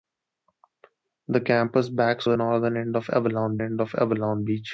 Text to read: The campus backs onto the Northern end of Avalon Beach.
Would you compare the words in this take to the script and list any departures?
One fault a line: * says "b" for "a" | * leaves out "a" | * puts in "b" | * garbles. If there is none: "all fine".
* leaves out "onto"
* puts in "end of Avalon"